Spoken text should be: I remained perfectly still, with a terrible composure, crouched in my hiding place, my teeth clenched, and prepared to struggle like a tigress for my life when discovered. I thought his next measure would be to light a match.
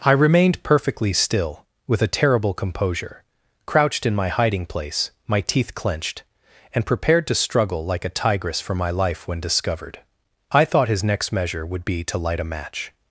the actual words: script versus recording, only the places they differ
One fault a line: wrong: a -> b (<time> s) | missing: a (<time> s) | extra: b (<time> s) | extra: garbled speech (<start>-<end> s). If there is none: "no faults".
no faults